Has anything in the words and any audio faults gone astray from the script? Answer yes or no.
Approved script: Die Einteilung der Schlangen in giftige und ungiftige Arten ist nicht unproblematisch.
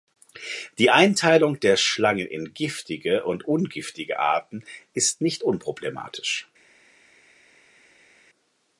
no